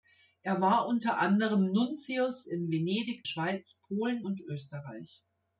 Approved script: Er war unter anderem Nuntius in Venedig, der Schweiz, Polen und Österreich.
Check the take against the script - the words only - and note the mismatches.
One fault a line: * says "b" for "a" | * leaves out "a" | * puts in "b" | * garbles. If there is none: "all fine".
* leaves out "der"